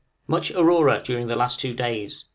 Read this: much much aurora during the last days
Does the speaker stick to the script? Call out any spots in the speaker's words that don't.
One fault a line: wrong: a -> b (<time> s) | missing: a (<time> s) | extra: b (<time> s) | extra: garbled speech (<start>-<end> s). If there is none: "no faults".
missing: much (0.5 s)
extra: two (1.6 s)